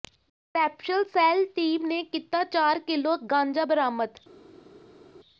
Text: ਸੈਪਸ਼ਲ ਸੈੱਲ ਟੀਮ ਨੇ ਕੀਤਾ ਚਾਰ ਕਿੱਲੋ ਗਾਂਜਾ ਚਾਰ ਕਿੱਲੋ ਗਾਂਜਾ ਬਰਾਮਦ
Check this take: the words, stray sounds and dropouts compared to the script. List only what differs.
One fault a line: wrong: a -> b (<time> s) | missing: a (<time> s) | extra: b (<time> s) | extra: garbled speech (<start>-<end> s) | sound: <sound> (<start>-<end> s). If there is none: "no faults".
missing: ਚਾਰ ਕਿੱਲੋ ਗਾਂਜਾ (3.6 s)